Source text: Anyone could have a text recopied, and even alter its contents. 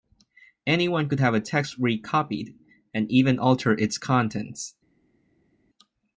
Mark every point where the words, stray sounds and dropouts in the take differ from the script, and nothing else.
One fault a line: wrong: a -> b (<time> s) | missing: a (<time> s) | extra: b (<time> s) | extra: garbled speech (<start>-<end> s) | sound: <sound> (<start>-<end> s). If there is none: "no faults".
no faults